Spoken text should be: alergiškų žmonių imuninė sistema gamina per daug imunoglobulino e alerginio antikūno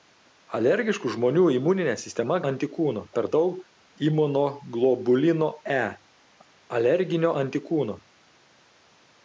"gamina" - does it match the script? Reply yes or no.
no